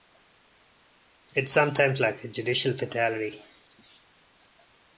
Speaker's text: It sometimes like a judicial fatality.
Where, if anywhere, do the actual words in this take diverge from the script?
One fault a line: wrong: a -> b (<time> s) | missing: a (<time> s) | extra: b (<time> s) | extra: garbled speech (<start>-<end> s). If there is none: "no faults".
no faults